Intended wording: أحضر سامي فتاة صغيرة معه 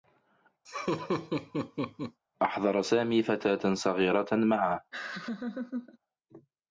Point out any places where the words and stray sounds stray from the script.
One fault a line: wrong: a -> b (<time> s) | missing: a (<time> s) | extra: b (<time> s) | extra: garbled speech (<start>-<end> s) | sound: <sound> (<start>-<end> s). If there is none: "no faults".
sound: laugh (0.6-2.2 s)
sound: laugh (4.9-6.0 s)